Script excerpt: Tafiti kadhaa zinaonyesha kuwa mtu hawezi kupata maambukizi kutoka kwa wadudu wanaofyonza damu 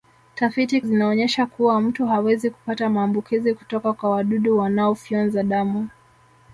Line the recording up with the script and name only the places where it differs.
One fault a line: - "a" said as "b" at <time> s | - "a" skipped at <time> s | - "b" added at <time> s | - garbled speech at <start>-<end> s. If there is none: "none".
- "kadhaa" skipped at 0.8 s